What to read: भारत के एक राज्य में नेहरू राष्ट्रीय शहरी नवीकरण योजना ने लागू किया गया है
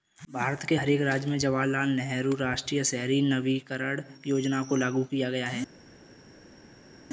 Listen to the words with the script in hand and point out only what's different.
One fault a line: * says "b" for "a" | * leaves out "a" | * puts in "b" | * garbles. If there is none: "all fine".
* puts in "हर"
* puts in "जवाहरलाल"
* says "को" for "ने"